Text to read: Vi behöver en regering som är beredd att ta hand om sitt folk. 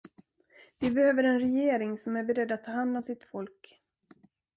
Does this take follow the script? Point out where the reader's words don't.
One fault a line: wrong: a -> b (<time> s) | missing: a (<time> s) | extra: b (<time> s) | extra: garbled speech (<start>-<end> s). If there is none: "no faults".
no faults